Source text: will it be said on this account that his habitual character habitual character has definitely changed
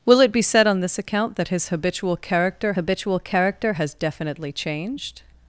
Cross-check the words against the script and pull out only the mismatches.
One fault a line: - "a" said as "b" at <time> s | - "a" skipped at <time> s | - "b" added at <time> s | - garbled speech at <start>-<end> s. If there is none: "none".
none